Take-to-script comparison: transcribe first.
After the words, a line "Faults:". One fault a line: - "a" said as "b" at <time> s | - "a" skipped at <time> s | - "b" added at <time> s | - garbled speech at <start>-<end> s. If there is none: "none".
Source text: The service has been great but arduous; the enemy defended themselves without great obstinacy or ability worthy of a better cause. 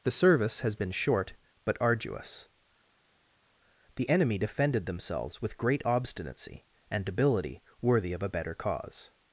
The service has been short but arduous; the enemy defended themselves with great obstinacy and ability worthy of a better cause.
Faults:
- "great" said as "short" at 0.9 s
- "without" said as "with" at 5.4 s
- "or" said as "and" at 6.9 s